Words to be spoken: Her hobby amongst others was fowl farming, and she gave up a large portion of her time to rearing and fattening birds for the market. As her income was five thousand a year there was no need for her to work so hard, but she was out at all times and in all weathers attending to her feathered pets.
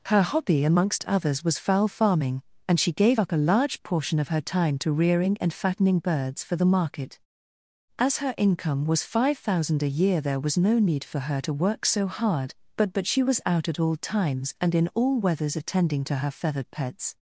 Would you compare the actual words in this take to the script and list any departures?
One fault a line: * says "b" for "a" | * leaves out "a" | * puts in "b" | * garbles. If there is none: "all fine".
* puts in "but"